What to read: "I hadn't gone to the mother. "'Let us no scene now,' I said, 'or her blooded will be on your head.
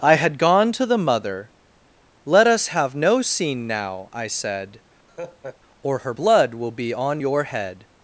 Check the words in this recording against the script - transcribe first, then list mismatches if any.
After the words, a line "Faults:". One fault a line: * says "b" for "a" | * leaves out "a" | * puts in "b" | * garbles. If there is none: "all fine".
"I had gone to the mother. "'Let us have no scene now,' I said, 'or her blood will be on your head.
Faults:
* says "had" for "hadn't"
* puts in "have"
* says "blood" for "blooded"